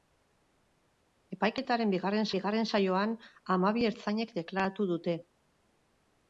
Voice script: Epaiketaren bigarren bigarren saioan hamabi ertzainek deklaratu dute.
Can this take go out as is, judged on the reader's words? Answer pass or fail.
pass